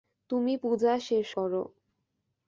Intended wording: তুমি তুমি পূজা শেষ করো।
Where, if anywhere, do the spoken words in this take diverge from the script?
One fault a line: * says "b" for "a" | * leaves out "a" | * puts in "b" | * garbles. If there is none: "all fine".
* leaves out "তুমি"